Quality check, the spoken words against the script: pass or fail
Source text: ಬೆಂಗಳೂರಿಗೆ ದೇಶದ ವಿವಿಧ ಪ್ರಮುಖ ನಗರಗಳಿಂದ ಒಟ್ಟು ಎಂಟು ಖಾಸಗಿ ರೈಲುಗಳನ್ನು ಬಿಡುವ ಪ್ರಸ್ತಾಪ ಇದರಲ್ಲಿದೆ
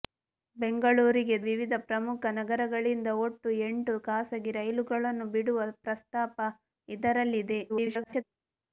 fail